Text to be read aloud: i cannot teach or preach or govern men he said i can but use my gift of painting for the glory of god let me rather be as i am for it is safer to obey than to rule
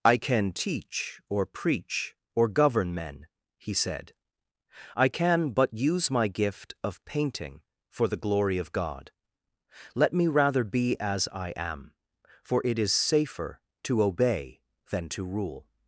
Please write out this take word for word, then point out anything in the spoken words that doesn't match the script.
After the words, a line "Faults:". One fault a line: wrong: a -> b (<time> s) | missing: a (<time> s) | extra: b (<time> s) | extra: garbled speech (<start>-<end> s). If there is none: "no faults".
i can teach or preach or govern men he said i can but use my gift of painting for the glory of god let me rather be as i am for it is safer to obey than to rule
Faults:
wrong: cannot -> can (0.2 s)